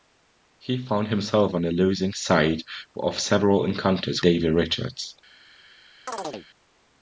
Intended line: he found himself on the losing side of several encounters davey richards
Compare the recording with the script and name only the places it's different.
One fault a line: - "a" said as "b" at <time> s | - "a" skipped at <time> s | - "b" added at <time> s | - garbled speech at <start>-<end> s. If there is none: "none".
none